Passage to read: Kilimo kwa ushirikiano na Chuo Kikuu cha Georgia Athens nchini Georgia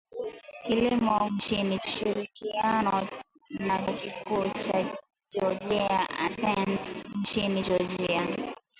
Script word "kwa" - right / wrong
wrong